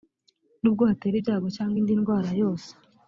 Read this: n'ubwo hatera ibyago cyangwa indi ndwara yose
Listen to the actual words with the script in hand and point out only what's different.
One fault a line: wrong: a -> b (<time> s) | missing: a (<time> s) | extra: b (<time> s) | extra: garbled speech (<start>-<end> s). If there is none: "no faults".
no faults